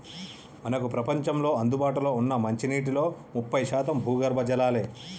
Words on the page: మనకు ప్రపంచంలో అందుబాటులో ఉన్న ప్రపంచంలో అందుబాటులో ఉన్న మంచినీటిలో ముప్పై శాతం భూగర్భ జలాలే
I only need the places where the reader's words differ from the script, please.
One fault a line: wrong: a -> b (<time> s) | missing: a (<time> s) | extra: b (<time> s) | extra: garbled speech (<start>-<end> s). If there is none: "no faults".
missing: ప్రపంచంలో అందుబాటులో ఉన్న (2.3 s)